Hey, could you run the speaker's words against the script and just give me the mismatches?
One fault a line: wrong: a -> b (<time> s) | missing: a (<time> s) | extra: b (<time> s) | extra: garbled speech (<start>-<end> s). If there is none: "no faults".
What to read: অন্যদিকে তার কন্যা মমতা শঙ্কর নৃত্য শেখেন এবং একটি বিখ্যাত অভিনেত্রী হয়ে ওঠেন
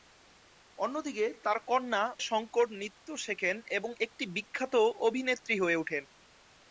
missing: মমতা (2.0 s)